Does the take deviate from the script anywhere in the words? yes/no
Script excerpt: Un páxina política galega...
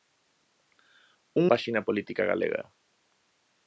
no